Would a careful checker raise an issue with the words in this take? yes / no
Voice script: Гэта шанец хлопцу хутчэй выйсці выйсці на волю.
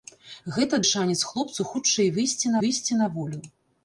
no